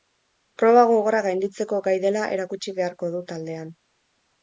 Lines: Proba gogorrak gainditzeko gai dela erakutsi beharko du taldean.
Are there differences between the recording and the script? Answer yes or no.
no